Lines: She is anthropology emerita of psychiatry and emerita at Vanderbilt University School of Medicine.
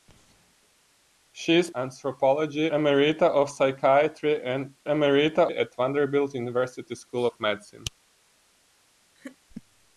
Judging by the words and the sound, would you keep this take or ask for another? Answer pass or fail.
fail